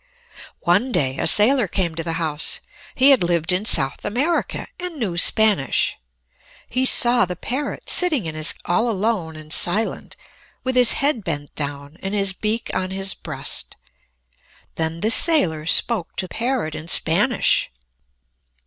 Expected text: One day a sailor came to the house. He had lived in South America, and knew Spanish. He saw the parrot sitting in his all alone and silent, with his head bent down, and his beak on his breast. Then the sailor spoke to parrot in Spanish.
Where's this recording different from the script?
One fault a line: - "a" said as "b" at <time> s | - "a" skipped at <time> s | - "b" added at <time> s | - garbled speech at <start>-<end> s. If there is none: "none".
none